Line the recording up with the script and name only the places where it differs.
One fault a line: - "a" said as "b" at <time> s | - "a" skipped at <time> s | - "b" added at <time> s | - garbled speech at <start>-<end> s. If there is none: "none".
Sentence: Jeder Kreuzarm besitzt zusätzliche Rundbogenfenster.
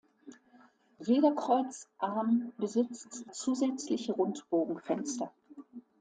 none